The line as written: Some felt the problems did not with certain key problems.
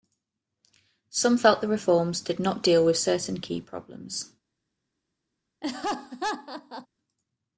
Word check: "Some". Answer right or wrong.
right